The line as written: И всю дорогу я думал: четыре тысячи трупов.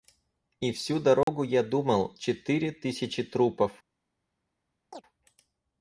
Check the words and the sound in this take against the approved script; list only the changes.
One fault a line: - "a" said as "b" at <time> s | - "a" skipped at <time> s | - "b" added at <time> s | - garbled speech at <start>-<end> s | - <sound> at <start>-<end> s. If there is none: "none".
- dropout at 1.2-1.3 s
- chirp at 4.9-5.0 s